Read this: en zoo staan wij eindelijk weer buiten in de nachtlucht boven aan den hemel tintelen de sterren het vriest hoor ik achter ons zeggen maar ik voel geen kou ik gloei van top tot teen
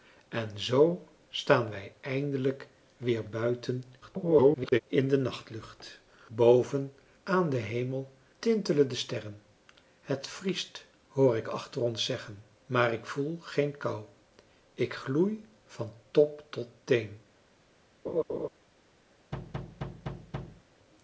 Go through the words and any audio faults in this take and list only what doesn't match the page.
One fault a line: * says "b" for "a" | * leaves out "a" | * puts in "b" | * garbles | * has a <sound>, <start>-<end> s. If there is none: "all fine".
* garbles
* has a laugh, 18.1-18.5 s
* has a thud, 19.3-20.6 s